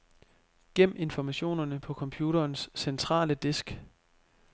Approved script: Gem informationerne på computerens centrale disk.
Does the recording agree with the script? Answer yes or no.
yes